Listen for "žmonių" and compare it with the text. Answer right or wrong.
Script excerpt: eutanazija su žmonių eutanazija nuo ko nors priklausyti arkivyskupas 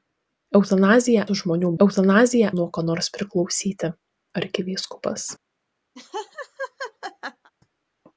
right